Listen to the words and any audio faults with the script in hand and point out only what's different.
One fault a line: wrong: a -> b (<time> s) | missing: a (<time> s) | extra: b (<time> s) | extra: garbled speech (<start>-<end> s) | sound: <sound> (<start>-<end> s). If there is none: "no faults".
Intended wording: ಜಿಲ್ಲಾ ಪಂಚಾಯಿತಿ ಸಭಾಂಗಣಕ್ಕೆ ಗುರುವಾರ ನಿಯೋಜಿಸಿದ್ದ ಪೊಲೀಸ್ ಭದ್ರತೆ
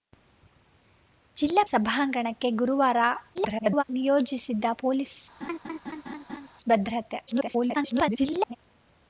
missing: ಪಂಚಾಯಿತಿ (1.6 s)
extra: garbled speech (3.3-3.8 s)
sound: laugh (5.4-6.5 s)
extra: garbled speech (7.3-8.6 s)